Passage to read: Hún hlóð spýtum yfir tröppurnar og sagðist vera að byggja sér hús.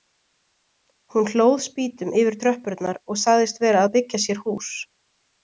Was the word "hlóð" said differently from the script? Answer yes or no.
no